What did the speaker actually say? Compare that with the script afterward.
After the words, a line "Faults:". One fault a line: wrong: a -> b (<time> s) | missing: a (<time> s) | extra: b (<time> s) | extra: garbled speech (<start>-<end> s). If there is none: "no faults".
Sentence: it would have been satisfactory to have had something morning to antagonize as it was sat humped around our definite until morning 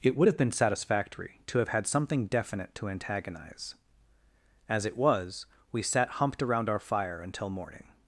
it would have been satisfactory to have had something definite to antagonize as it was we sat humped around our fire until morning
Faults:
wrong: morning -> definite (2.3 s)
extra: we (5.7 s)
wrong: definite -> fire (6.8 s)